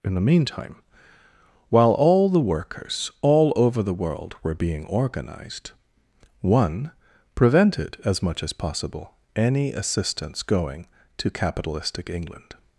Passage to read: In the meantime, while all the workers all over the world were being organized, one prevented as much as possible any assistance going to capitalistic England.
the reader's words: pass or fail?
pass